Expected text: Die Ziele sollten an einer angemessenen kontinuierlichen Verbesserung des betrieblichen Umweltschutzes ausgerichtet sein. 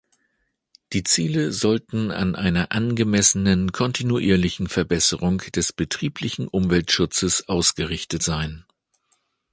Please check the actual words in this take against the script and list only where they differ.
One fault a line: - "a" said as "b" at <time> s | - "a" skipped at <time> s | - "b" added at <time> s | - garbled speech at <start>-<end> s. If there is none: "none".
none